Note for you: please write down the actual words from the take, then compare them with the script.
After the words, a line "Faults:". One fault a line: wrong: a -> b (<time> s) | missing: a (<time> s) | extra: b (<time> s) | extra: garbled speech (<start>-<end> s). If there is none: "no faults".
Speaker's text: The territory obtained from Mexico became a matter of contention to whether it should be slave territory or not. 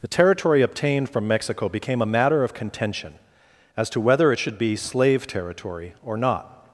The territory obtained from Mexico became a matter of contention as to whether it should be slave territory or not.
Faults:
extra: as (3.8 s)